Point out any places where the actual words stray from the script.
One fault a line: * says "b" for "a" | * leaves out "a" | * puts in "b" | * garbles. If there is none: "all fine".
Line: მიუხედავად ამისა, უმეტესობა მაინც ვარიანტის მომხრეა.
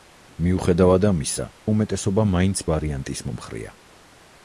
all fine